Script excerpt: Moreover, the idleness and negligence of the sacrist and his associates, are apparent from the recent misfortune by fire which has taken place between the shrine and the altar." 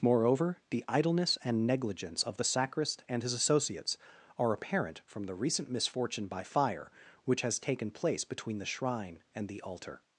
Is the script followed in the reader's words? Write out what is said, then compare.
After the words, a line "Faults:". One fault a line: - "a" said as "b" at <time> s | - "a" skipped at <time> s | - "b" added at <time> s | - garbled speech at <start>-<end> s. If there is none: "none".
Moreover, the idleness and negligence of the sacrist and his associates, are apparent from the recent misfortune by fire which has taken place between the shrine and the altar."
Faults:
none